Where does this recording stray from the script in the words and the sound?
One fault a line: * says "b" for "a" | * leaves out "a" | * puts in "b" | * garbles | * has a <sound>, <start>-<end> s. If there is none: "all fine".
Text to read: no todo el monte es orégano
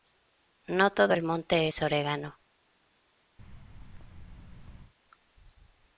* has a thud, 3.4-4.9 s